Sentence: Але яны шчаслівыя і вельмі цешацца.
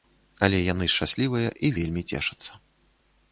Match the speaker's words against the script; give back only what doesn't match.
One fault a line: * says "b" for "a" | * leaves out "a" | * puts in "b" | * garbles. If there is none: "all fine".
all fine